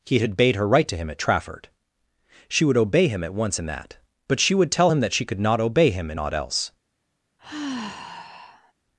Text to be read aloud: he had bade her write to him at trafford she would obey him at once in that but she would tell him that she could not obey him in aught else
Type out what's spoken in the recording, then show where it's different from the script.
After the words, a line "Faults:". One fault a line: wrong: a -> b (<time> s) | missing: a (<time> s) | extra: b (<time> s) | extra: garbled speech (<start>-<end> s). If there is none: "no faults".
he had bade her write to him at trafford she would obey him at once in that but she would tell him that she could not obey him in aught else
Faults:
no faults